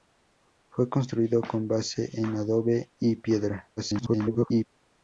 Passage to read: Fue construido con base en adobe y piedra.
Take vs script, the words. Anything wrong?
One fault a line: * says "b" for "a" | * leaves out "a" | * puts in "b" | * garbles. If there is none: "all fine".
* garbles